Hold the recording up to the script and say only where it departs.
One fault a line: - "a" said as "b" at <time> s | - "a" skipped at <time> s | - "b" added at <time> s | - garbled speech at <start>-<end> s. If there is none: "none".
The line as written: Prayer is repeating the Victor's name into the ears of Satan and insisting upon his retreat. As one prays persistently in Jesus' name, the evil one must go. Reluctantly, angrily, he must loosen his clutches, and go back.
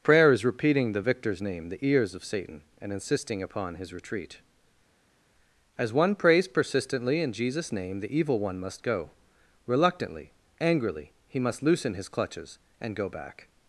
- "into" skipped at 1.7 s